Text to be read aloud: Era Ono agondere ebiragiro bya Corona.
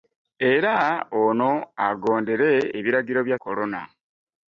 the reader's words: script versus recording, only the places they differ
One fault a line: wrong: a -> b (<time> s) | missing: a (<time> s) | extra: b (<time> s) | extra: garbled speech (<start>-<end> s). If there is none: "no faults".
no faults